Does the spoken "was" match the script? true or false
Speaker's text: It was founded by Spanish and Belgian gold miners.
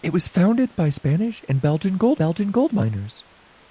true